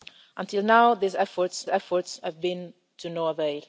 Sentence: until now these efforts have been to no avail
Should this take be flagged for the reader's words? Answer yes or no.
yes